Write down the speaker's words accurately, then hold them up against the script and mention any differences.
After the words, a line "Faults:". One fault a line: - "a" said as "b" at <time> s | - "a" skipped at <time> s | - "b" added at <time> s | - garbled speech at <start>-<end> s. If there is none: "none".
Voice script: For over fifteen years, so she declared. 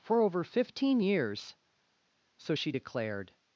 For over fifteen years, so she declared.
Faults:
none